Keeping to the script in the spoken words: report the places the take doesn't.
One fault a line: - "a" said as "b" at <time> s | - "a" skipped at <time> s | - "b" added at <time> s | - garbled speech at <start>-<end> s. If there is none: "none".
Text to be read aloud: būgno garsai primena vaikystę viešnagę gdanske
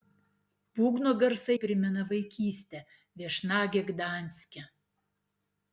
none